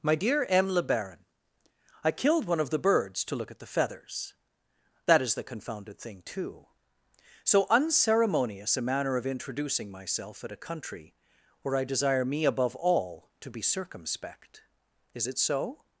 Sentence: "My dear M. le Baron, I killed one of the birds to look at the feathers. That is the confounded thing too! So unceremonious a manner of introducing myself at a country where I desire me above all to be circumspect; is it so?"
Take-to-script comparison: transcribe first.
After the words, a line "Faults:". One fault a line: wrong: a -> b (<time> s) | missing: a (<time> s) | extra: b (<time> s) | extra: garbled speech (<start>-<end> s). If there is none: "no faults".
"My dear M. le Baron, I killed one of the birds to look at the feathers. That is the confounded thing too! So unceremonious a manner of introducing myself at a country where I desire me above all to be circumspect; is it so?"
Faults:
no faults